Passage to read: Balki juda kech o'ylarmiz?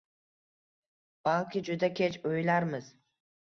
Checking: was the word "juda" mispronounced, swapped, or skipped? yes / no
no